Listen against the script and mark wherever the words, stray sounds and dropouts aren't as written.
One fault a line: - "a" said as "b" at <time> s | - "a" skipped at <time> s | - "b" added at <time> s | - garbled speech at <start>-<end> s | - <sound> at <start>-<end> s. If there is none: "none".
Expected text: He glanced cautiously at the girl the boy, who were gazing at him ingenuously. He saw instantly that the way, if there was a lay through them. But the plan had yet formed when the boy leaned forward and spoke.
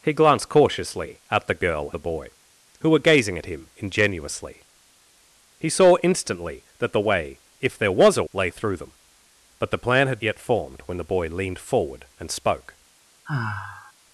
- sigh at 13.3-13.9 s